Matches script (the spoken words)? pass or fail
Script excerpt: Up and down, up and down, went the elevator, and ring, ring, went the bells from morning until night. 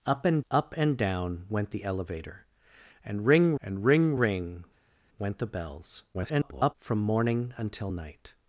fail